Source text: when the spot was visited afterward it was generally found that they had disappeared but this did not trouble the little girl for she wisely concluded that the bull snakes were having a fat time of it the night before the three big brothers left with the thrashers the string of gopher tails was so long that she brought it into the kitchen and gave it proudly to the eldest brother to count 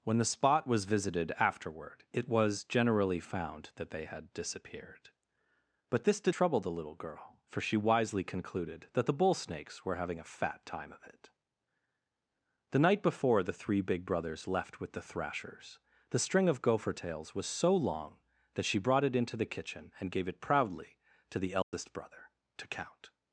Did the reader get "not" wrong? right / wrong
wrong